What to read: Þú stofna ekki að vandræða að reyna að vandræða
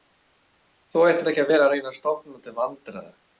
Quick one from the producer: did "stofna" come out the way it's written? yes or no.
no